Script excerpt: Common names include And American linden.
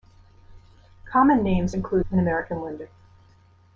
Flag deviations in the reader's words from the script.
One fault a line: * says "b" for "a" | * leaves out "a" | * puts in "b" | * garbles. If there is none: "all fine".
all fine